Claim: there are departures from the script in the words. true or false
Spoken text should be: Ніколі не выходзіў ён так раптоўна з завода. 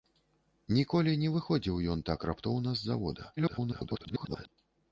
true